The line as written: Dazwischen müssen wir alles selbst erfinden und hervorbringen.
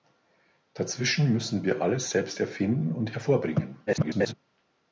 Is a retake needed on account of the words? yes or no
yes